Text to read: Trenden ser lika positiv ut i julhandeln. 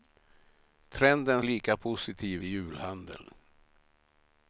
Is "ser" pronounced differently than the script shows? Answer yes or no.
yes